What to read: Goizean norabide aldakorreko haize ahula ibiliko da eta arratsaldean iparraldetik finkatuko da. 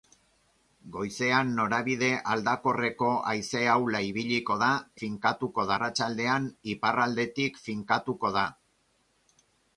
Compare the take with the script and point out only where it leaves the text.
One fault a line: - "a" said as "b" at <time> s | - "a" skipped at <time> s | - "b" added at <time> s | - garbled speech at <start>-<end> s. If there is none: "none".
- "eta" said as "finkatuko" at 5.0 s